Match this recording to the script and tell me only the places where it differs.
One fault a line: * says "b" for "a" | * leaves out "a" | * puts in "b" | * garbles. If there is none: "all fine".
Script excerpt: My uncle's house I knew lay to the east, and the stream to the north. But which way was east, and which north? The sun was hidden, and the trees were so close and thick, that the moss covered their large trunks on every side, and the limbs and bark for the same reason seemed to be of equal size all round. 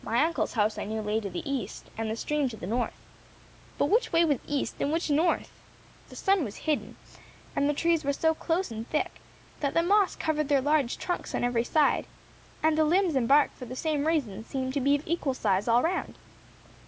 all fine